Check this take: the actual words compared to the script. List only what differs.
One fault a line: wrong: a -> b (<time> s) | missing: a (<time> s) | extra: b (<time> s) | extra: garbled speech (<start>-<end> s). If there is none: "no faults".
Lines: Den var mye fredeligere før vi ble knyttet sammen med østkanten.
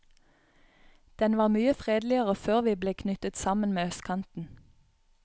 no faults